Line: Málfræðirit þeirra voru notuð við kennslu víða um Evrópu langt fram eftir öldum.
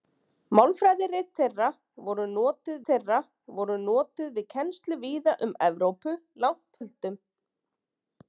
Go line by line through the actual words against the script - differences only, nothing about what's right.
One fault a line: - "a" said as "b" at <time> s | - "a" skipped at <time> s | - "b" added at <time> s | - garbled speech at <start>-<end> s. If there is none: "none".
- "þeirra voru notuð" added at 2.9 s
- "fram eftir" skipped at 6.8 s